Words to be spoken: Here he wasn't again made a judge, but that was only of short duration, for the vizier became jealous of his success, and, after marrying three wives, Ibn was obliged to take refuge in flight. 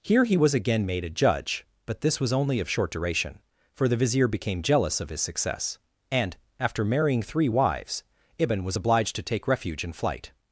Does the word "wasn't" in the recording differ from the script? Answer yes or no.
yes